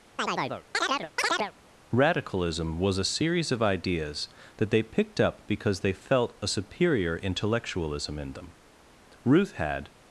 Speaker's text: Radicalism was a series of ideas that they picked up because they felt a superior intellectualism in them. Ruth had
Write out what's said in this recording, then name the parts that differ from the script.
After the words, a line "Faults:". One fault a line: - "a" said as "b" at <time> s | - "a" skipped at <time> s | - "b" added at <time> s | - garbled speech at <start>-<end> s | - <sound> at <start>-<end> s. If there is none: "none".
Radicalism was a series of ideas that they picked up because they felt a superior intellectualism in them. Ruth had
Faults:
- chirp at 0.2-1.5 s